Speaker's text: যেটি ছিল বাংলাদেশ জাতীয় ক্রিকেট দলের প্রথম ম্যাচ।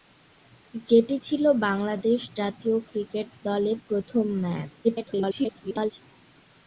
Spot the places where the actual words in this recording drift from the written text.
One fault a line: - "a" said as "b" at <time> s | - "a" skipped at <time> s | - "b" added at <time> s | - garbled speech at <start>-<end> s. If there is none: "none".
- garbled speech at 4.8-5.9 s